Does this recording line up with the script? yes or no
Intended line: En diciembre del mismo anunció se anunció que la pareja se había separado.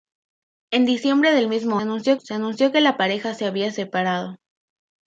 yes